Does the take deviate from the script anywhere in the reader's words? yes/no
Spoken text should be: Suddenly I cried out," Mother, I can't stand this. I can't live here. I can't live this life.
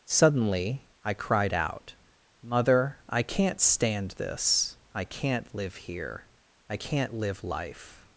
yes